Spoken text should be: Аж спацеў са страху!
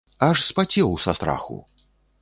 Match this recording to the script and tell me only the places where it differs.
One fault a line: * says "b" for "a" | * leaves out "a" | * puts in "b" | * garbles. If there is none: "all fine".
all fine